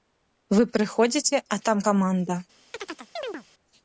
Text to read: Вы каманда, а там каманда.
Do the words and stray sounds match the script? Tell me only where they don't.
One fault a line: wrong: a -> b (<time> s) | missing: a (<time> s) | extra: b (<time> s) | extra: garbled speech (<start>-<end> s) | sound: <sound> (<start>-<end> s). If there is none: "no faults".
wrong: каманда -> прыходзіце (0.8 s)
sound: chirp (2.7-3.4 s)